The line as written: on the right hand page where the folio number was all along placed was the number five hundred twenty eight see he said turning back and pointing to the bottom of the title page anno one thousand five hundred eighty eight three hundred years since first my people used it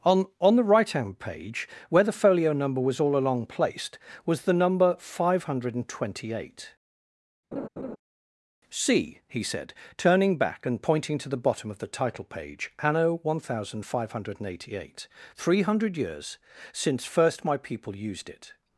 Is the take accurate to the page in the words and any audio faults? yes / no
no